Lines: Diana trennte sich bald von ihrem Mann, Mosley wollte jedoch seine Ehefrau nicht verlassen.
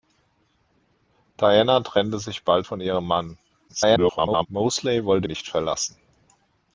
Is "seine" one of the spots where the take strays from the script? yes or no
yes